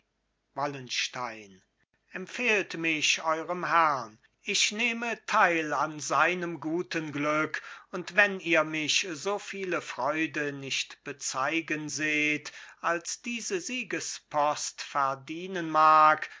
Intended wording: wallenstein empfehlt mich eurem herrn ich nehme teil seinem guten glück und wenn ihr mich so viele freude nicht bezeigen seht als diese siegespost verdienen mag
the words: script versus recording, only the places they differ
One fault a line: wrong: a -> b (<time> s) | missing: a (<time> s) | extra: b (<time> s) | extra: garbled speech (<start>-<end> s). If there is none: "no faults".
extra: an (5.7 s)